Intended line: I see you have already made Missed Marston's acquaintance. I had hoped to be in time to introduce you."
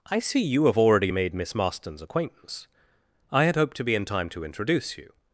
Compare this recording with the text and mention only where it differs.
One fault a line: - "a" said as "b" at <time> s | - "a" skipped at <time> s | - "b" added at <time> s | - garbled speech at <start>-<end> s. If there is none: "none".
- "Missed" said as "Miss" at 1.3 s